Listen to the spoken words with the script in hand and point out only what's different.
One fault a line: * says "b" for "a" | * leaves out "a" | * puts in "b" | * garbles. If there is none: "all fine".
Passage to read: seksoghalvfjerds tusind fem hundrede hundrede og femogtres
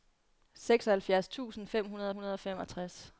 all fine